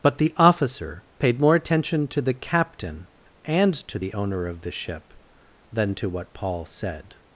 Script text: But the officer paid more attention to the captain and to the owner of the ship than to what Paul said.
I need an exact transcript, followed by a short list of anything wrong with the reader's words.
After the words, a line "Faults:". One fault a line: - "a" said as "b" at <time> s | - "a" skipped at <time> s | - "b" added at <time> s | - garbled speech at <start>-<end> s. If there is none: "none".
But the officer paid more attention to the captain and to the owner of the ship than to what Paul said.
Faults:
none